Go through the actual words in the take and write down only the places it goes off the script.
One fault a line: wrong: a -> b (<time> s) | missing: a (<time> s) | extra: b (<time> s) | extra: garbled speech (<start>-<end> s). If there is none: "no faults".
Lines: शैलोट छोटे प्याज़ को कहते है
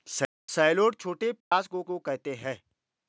extra: को (1.8 s)